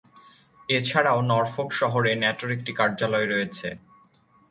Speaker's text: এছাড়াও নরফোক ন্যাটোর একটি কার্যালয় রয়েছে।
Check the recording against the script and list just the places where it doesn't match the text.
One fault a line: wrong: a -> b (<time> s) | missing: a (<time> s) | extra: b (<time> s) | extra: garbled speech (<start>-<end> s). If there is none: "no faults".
extra: শহরে (1.8 s)